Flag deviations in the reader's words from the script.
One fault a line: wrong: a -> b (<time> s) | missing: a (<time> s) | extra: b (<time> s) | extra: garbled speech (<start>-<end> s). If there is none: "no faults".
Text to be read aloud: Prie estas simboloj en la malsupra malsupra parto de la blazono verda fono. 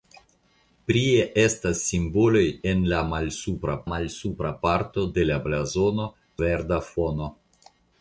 no faults